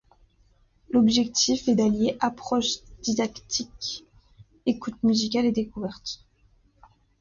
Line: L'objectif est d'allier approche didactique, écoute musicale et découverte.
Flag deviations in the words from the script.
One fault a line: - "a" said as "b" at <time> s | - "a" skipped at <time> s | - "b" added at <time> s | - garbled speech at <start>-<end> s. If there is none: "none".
none